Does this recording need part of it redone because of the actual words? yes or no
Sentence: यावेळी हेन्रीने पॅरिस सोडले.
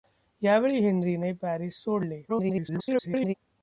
yes